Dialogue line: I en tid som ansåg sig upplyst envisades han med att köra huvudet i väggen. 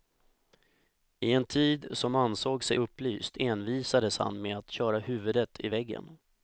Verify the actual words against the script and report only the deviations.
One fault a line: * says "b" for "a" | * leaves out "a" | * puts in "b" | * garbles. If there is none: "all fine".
all fine